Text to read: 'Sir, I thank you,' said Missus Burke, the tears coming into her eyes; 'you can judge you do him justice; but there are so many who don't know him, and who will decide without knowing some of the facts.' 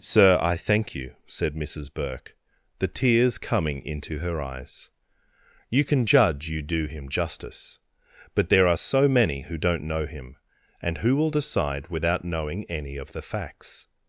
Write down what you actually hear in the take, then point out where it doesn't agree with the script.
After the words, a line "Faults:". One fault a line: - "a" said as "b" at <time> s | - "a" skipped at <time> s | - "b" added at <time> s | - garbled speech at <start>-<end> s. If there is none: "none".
'Sir, I thank you,' said Missus Burke, the tears coming into her eyes; 'you can judge you do him justice; but there are so many who don't know him, and who will decide without knowing any of the facts.'
Faults:
- "some" said as "any" at 12.6 s